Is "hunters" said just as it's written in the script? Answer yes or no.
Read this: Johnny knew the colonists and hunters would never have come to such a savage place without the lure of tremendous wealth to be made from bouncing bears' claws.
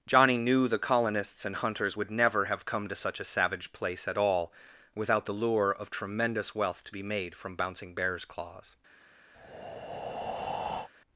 yes